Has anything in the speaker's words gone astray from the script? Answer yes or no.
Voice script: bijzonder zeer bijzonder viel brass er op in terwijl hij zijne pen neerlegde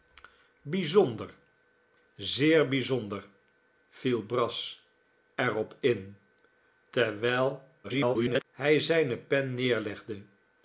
yes